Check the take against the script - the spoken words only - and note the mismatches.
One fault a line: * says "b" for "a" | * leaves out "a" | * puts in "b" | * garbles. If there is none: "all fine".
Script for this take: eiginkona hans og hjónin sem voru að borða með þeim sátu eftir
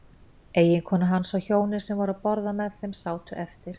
all fine